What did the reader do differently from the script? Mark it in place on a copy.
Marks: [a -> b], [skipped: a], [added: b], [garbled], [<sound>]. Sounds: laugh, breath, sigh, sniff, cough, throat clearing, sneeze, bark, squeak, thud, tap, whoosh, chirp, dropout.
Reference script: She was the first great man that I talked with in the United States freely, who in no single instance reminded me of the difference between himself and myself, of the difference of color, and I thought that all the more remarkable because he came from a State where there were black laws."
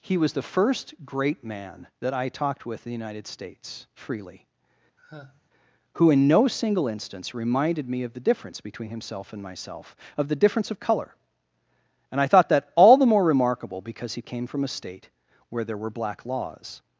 [She -> He] was the first great man that I talked with in the United States freely, [sigh] who in no single instance reminded me of the difference between himself and myself, of the difference of color, and I thought that all the more remarkable because he came from a State where there were black laws."